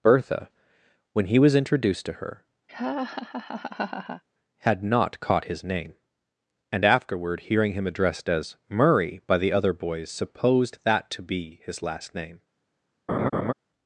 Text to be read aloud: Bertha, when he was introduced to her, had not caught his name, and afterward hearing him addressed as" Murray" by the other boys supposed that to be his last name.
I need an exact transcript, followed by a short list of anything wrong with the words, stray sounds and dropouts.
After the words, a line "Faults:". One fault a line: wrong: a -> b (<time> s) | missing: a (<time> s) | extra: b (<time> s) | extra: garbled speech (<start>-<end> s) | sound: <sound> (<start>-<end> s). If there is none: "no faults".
Bertha, when he was introduced to her, had not caught his name, and afterward hearing him addressed as" Murray" by the other boys supposed that to be his last name.
Faults:
sound: laugh (2.7-4.2 s)
sound: laugh (13.1-13.5 s)